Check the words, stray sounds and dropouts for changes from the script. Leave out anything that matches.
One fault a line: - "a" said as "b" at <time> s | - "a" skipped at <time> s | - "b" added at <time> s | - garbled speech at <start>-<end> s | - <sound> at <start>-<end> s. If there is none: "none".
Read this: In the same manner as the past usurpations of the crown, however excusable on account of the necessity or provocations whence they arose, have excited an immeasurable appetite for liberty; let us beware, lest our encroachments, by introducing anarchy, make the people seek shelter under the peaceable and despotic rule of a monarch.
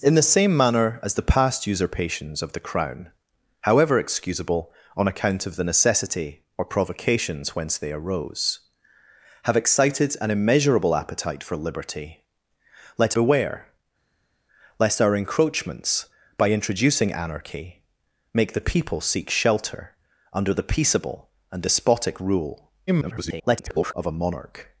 - "us" skipped at 13.2 s
- garbled speech at 22.9-23.9 s